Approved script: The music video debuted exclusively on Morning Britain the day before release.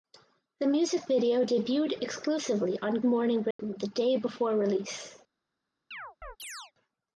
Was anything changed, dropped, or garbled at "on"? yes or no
no